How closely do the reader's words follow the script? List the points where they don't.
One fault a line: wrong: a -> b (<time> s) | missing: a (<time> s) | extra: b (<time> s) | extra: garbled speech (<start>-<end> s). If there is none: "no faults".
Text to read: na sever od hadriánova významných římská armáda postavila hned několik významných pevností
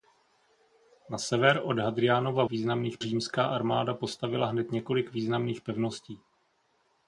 no faults